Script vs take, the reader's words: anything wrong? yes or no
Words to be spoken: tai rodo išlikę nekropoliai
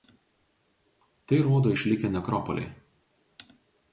no